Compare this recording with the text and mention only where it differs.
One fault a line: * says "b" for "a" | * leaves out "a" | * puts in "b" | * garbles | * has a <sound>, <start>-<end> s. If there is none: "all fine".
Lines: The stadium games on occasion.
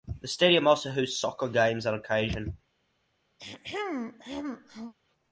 * puts in "also hosts soccer"
* has a throat clearing, 3.4-4.9 s